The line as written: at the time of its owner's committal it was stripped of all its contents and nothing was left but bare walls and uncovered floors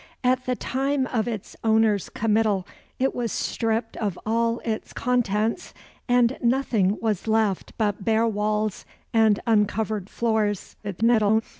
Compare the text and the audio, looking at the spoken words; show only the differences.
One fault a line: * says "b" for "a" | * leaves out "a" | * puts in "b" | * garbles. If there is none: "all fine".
* garbles